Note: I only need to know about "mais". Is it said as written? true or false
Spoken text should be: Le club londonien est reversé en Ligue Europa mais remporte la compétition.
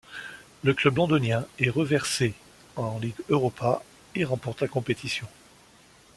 false